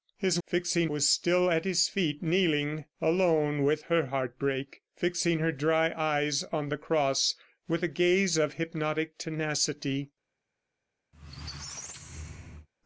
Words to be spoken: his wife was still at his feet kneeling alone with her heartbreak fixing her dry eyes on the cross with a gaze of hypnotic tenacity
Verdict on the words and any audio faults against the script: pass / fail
fail